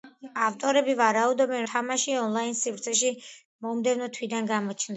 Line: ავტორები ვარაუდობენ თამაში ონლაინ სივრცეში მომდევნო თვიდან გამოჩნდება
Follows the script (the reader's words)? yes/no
yes